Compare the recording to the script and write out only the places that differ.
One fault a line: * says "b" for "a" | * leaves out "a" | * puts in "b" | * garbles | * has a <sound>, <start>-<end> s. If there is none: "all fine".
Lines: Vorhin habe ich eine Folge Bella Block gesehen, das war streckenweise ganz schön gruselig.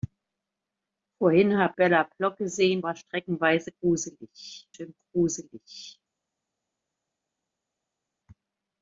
* leaves out "ich eine Folge"
* leaves out "das"
* says "gruselig" for "ganz"